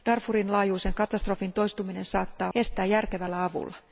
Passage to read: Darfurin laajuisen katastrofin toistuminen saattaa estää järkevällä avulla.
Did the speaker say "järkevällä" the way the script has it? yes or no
yes